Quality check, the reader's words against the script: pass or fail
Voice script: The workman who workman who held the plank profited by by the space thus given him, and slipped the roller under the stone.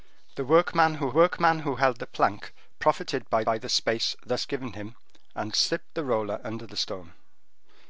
pass